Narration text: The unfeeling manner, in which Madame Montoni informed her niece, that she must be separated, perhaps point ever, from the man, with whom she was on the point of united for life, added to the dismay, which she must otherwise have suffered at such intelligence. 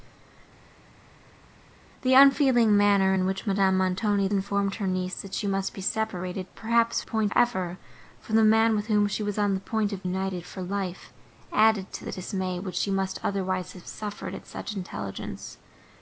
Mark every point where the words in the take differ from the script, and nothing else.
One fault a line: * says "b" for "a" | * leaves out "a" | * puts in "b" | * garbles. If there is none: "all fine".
all fine